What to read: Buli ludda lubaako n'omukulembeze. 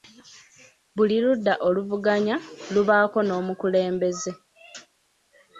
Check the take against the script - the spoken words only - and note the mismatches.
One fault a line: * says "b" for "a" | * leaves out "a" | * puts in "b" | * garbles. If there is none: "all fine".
* puts in "oluvuganya"